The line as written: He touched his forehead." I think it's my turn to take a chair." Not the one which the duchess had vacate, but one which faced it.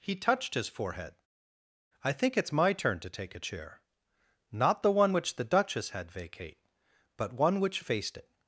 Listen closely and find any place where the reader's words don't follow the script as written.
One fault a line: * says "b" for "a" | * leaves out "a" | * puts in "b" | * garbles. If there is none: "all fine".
all fine